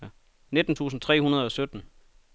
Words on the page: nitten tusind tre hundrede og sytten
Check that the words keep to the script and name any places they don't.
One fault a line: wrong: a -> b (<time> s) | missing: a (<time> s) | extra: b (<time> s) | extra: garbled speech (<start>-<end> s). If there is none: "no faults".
no faults